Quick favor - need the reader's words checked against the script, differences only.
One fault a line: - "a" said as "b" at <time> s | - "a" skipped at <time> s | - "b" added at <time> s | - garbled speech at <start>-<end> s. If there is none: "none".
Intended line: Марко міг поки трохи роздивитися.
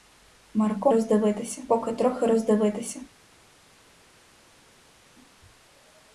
- "міг" said as "роздивитися" at 0.9 s